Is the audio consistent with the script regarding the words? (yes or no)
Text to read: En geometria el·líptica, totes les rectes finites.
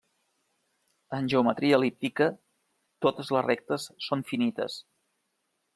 no